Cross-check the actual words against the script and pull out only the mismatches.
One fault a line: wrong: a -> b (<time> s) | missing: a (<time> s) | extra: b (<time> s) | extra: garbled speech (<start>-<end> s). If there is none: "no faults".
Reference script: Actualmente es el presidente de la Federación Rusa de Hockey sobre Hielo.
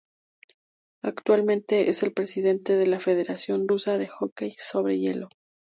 no faults